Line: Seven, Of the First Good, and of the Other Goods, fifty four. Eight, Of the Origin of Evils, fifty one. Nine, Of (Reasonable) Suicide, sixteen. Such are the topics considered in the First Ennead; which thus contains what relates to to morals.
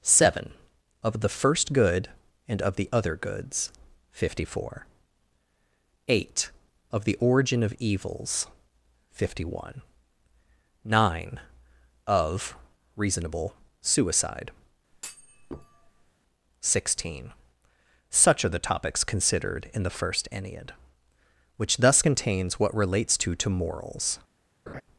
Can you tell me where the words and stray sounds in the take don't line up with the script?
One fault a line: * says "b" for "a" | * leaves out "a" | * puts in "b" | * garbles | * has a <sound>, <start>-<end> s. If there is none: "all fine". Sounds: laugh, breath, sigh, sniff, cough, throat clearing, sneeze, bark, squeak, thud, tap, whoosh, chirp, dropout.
* has a thud, 14.9-16.1 s
* has a laugh, 24.7-24.8 s